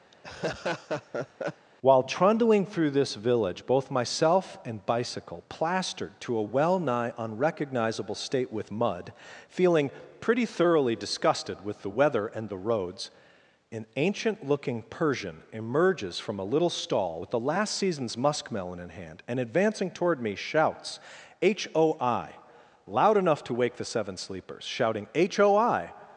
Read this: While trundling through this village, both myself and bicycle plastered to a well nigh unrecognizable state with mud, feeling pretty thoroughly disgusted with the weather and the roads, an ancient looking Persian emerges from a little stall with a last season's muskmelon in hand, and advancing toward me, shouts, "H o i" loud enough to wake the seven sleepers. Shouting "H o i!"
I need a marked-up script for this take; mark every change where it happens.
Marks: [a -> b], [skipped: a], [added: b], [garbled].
While trundling through this village, both myself and bicycle plastered to a well nigh unrecognizable state with mud, feeling pretty thoroughly disgusted with the weather and the roads, an ancient looking Persian emerges from a little stall with [a -> the] last season's muskmelon in hand, and advancing toward me, shouts, "H o i" loud enough to wake the seven sleepers. Shouting "H o i!"